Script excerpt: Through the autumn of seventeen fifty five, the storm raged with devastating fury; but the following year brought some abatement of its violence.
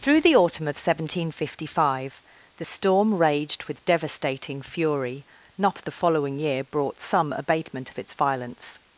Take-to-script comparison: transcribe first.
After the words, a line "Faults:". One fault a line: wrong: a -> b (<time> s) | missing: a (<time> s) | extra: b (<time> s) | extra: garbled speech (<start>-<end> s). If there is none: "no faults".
Through the autumn of seventeen fifty five, the storm raged with devastating fury; not the following year brought some abatement of its violence.
Faults:
wrong: but -> not (5.6 s)